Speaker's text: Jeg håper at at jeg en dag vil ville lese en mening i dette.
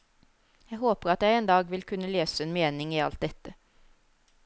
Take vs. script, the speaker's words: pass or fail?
fail